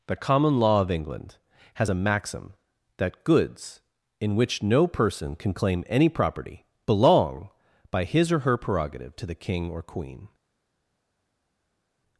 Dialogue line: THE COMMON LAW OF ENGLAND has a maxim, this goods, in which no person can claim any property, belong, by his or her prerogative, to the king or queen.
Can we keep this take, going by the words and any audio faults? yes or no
no